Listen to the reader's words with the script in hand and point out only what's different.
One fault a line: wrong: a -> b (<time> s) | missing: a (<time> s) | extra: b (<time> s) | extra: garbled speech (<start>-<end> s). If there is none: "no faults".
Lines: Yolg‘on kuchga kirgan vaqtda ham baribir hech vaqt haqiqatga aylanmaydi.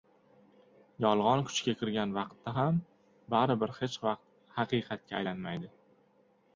no faults